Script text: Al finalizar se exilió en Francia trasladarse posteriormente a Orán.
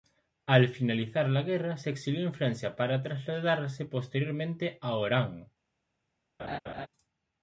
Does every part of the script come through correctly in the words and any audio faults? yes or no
no